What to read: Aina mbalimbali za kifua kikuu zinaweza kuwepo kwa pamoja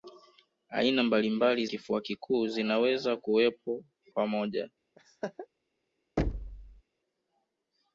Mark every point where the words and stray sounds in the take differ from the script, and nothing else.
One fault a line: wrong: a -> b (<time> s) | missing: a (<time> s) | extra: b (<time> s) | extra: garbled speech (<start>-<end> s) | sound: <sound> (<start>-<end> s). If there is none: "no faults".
missing: za (1.6 s)
missing: kwa (3.8 s)
sound: laugh (5.0-5.5 s)
sound: thud (6.2-6.8 s)